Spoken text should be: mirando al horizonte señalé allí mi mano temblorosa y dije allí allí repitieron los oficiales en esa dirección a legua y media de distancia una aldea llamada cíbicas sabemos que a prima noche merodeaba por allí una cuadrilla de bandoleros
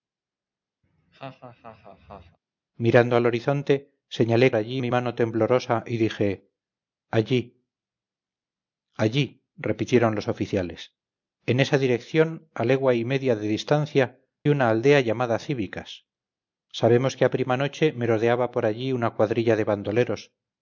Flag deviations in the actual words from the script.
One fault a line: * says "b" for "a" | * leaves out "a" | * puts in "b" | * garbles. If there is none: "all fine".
all fine